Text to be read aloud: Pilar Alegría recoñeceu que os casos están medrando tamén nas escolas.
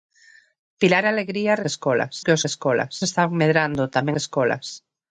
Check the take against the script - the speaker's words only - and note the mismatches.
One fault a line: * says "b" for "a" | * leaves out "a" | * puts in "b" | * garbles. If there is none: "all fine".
* says "escolas" for "recoñeceu"
* says "escolas" for "casos"
* leaves out "nas"